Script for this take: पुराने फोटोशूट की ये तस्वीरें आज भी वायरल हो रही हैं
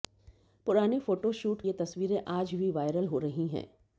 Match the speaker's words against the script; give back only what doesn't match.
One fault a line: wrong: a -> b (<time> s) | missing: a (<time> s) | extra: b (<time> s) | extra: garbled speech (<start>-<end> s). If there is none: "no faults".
missing: की (1.6 s)